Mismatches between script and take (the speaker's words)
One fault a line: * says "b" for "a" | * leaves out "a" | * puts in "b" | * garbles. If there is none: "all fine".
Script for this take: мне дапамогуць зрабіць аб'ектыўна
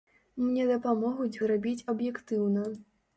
all fine